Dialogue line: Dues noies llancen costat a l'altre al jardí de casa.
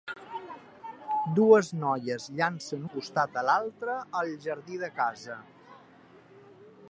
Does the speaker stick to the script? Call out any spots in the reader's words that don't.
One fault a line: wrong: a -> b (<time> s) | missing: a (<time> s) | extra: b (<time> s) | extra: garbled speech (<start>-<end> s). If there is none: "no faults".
no faults